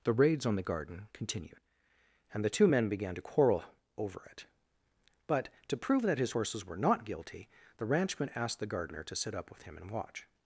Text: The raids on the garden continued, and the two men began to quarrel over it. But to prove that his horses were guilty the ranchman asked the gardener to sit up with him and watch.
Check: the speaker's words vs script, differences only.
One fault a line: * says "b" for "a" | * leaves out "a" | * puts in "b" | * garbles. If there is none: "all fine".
* puts in "not"